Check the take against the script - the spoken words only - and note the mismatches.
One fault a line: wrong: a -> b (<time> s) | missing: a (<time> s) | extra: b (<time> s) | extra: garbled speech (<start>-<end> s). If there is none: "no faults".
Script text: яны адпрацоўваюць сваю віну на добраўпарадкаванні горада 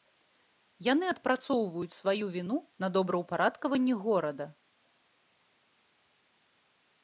no faults